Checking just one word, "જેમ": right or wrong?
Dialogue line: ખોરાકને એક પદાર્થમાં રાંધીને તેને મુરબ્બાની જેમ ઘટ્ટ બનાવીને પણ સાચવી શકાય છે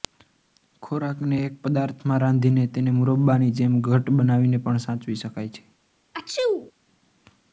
right